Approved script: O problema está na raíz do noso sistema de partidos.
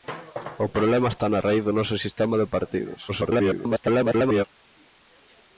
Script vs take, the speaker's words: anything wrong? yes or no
yes